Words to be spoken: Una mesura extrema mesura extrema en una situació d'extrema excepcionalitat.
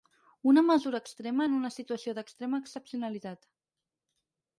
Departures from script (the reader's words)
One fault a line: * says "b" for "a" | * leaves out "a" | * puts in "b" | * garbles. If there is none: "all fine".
* leaves out "mesura extrema"